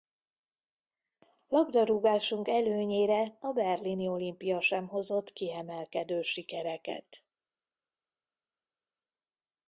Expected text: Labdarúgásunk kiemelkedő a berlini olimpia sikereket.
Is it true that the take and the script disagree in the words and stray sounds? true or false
true